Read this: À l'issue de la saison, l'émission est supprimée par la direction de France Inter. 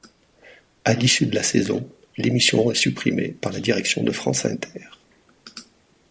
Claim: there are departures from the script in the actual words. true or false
false